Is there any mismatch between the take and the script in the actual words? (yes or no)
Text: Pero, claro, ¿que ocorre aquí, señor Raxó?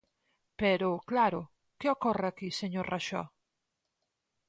no